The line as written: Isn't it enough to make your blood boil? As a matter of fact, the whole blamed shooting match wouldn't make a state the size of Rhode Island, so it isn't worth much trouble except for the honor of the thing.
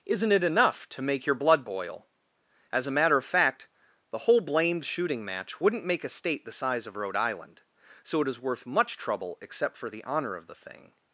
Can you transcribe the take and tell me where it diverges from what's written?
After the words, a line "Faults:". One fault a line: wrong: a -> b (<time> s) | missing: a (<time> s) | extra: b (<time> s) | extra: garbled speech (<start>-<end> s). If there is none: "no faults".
Isn't it enough to make your blood boil? As a matter of fact, the whole blamed shooting match wouldn't make a state the size of Rhode Island, so it is worth much trouble except for the honor of the thing.
Faults:
wrong: isn't -> is (8.3 s)